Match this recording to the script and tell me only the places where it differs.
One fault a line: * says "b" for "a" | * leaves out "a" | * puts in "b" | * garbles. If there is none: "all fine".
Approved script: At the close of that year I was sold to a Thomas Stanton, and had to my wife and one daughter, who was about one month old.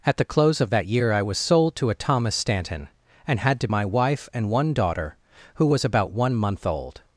all fine